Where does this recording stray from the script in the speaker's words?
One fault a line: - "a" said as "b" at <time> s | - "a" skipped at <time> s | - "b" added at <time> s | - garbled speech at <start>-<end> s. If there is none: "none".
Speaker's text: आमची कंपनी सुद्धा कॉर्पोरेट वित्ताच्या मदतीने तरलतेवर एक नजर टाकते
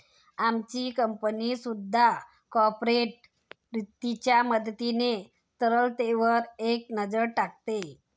none